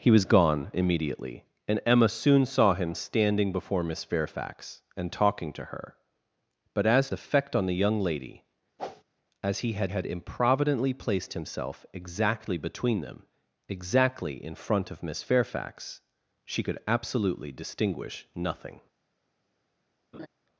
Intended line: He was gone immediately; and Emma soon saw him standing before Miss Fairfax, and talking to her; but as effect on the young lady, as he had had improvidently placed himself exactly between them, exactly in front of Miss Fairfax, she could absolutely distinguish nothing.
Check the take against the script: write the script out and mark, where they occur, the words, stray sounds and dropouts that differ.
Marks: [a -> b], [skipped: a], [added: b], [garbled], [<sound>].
He was gone immediately; and Emma soon saw him standing before Miss Fairfax, and talking to her; but as effect on the young lady, [whoosh] as he had had improvidently placed himself exactly between them, exactly in front of Miss Fairfax, she could absolutely distinguish nothing. [laugh]